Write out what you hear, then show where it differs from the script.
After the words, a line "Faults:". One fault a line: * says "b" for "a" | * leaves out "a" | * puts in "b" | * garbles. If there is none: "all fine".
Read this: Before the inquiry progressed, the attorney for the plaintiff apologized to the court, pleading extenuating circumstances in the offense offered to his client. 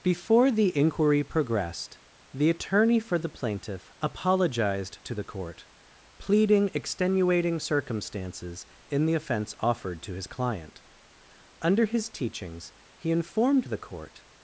Before the inquiry progressed, the attorney for the plaintiff apologized to the court, pleading extenuating circumstances in the offense offered to his client. Under his teachings, he informed the court
Faults:
* puts in "Under his teachings he informed the court"